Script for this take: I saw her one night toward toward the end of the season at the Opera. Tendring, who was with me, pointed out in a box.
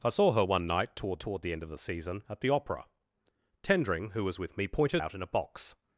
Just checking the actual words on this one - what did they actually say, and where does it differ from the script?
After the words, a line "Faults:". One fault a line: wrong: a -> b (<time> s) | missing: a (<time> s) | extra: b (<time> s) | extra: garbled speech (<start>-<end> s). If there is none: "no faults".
I saw her one night toward toward the end of the season at the Opera. Tendring, who was with me, pointed out in a box.
Faults:
no faults